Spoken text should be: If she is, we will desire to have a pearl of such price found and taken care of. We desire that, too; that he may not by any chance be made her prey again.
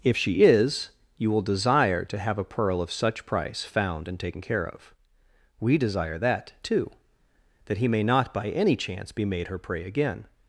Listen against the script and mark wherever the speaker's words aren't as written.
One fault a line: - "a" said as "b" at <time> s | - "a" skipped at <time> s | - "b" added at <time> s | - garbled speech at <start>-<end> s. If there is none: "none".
- "we" said as "you" at 1.2 s